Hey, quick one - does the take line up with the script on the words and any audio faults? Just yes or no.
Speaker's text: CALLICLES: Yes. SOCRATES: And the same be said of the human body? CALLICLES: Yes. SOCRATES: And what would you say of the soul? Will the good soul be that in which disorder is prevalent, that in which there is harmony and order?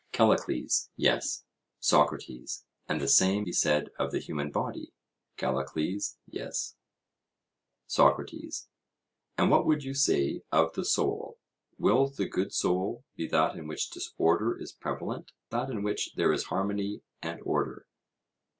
yes